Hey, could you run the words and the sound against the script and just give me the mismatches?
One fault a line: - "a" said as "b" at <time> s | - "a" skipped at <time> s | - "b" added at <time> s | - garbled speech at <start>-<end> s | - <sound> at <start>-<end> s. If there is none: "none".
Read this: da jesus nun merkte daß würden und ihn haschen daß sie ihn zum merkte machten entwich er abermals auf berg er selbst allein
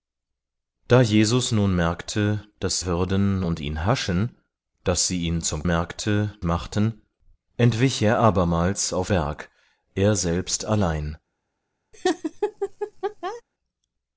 - laugh at 11.9-13.4 s